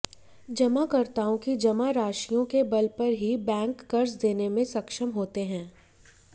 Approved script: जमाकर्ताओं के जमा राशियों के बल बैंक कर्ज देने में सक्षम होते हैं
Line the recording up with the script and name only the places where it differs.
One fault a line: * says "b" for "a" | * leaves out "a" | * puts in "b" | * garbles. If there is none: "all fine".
* says "की" for "के"
* puts in "पर ही"